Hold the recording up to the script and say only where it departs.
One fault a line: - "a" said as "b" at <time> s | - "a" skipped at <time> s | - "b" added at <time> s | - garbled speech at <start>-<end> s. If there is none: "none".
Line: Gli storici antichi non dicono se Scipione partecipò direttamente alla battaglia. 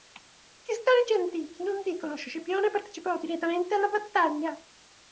none